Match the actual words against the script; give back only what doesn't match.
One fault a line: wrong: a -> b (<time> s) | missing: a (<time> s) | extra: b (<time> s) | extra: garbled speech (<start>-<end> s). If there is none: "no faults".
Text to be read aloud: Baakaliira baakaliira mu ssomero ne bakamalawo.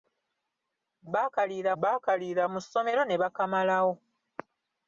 no faults